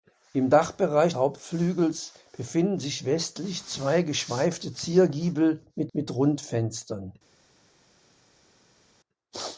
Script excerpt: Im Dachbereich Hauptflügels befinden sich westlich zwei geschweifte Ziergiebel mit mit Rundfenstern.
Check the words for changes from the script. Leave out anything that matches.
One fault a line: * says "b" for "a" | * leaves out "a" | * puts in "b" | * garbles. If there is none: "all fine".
all fine